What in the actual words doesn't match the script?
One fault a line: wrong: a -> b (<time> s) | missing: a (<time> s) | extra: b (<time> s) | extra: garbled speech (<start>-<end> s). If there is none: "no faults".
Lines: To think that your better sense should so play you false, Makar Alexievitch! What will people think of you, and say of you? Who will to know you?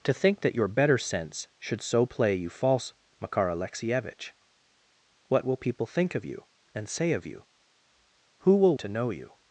no faults